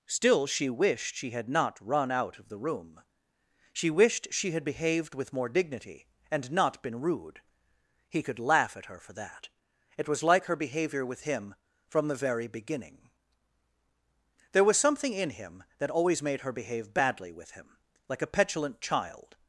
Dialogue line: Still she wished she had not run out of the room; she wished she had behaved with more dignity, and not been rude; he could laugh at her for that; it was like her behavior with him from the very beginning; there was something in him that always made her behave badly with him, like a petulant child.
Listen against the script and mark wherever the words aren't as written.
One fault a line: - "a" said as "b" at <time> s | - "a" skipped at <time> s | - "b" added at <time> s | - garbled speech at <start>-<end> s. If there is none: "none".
none